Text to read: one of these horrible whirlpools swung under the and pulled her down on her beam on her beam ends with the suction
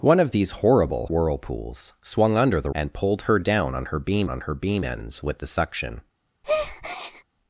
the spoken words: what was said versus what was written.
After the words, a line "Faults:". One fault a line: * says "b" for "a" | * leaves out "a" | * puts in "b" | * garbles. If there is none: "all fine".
one of these horrible whirlpools swung under the and pulled her down on her beam on her beam ends with the suction
Faults:
all fine